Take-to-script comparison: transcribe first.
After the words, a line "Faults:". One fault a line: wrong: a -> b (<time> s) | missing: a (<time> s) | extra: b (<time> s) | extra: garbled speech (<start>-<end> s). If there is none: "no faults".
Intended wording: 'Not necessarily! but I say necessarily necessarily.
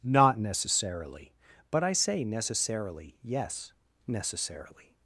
'Not necessarily! but I say necessarily yes, necessarily.
Faults:
extra: yes (3.2 s)